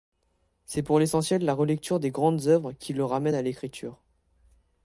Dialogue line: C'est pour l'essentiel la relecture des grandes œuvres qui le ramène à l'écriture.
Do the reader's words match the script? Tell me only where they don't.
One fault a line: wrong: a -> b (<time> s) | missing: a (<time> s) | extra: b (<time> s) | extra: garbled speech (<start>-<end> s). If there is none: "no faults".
no faults